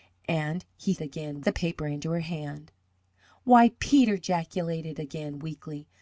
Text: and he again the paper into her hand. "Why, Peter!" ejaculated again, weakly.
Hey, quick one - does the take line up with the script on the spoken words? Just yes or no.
yes